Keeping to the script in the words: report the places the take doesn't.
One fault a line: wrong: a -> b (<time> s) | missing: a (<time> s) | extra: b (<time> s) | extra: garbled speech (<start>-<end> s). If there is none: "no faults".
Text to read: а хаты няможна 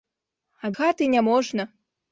no faults